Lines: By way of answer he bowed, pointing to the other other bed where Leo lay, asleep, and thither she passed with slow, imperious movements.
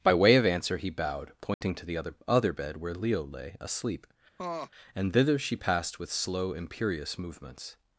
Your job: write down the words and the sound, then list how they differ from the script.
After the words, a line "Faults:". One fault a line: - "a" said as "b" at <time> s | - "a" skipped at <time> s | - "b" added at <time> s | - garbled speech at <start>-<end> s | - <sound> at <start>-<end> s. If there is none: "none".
By way of answer he bowed, pointing to the other other bed where Leo lay, asleep, and thither she passed with slow, imperious movements.
Faults:
- dropout at 1.5-1.6 s
- laugh at 4.4-4.7 s